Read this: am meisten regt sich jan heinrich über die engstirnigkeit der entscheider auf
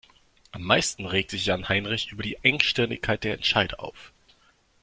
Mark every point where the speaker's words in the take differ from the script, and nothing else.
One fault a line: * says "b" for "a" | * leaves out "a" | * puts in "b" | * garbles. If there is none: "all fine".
all fine